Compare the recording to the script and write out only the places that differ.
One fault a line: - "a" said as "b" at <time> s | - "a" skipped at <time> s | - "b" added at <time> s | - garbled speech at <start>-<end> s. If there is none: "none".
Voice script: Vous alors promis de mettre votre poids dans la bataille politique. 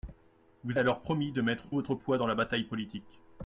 none